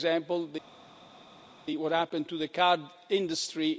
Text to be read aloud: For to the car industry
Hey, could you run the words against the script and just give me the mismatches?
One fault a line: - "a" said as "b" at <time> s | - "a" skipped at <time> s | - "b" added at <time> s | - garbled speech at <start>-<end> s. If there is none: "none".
- "example what happened" added at 0.1 s